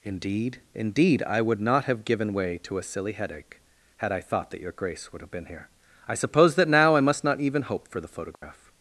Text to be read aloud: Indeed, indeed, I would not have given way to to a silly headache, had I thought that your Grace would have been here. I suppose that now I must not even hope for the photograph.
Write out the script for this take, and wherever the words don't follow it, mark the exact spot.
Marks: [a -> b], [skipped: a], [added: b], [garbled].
Indeed, indeed, I would not have given way to [skipped: to] a silly headache, had I thought that your Grace would have been here. I suppose that now I must not even hope for the photograph.